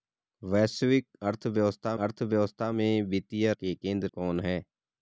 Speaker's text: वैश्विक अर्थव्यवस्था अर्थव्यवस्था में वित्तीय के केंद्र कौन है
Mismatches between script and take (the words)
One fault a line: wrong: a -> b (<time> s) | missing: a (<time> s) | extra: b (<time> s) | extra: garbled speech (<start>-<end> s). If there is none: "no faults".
no faults